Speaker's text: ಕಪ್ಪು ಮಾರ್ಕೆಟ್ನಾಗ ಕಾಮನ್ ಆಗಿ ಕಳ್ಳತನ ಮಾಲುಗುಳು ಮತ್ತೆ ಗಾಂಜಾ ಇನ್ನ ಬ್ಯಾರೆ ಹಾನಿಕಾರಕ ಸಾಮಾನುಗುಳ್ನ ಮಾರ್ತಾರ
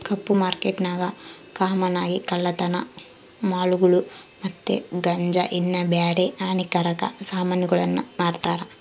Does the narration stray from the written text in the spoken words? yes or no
no